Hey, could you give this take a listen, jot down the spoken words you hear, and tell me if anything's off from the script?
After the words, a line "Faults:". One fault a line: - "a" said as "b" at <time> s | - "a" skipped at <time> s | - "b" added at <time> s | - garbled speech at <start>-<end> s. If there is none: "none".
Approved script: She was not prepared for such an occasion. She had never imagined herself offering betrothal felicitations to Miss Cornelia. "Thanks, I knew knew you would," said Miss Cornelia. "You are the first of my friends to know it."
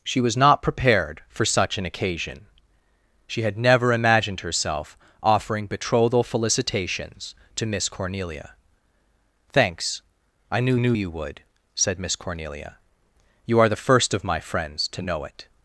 She was not prepared for such an occasion. She had never imagined herself offering betrothal felicitations to Miss Cornelia. "Thanks, I knew knew you would," said Miss Cornelia. "You are the first of my friends to know it."
Faults:
none